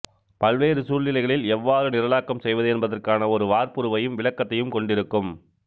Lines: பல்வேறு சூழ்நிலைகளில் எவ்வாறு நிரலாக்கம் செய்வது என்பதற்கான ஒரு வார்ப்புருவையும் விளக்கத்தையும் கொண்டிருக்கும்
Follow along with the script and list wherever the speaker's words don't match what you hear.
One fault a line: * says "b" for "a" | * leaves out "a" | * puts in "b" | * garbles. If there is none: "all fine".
all fine